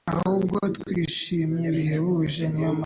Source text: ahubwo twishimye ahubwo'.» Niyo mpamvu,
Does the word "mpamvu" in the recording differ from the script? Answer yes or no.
no